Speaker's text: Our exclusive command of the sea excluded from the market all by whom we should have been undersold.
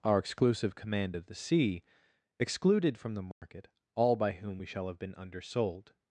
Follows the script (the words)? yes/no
no